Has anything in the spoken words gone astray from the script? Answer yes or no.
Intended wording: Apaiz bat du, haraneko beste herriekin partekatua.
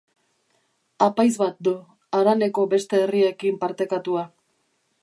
no